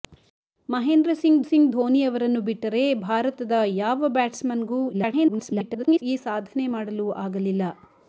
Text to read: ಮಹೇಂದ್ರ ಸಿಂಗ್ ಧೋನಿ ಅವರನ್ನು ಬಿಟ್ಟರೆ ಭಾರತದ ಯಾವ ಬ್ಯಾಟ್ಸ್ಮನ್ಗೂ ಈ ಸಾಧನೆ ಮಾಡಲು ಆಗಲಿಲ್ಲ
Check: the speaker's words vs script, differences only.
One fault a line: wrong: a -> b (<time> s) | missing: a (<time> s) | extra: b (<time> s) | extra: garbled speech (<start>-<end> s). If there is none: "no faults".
extra: ಸಿಂಗ್ (1.4 s)
extra: garbled speech (4.9-6.0 s)